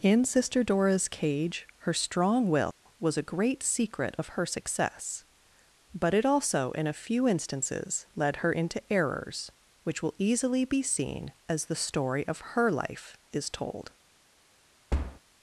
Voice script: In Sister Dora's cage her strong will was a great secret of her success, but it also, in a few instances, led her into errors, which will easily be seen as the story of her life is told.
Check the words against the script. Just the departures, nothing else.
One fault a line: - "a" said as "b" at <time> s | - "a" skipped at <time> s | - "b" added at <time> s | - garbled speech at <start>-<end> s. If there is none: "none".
none